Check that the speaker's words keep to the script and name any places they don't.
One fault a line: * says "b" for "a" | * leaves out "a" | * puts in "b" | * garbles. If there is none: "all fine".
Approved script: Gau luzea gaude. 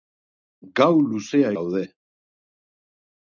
all fine